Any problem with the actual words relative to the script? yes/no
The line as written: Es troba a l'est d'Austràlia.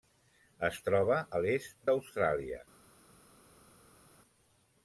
no